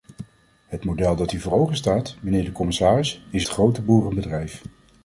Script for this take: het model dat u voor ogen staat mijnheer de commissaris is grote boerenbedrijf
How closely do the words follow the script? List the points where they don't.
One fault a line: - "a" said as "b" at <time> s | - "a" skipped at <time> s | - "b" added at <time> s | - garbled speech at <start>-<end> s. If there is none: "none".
none